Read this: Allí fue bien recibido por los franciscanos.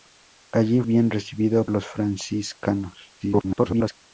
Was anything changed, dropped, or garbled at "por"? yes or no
yes